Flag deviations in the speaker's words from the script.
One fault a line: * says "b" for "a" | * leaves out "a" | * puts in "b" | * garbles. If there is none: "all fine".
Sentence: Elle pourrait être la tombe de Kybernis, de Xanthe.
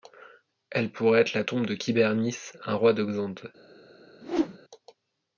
* puts in "un roi"